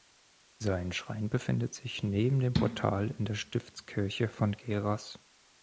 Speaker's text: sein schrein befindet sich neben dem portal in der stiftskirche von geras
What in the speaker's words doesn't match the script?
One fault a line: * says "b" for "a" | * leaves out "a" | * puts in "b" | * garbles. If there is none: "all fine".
all fine